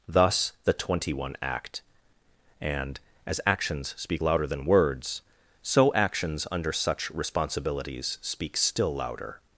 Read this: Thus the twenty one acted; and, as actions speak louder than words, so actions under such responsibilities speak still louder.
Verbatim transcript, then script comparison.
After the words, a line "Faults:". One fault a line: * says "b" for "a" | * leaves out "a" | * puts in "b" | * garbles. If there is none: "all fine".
Thus the twenty one act; and, as actions speak louder than words, so actions under such responsibilities speak still louder.
Faults:
* says "act" for "acted"